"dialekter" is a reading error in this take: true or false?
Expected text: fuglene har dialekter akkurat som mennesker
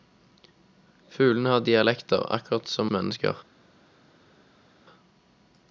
false